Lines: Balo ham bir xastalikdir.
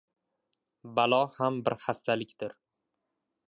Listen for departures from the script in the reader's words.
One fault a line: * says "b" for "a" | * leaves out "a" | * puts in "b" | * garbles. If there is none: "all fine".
all fine